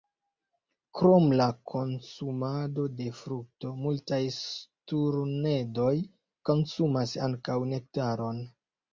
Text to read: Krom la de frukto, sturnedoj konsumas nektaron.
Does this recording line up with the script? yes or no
no